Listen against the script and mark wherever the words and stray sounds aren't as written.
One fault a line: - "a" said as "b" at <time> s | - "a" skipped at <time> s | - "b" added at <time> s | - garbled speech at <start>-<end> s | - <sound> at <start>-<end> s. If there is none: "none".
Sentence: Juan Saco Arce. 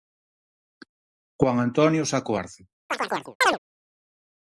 - "Antonio" added at 1.6 s
- chirp at 2.9-3.6 s